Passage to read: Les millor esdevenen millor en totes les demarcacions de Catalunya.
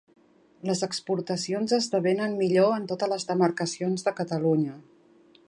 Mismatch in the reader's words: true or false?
true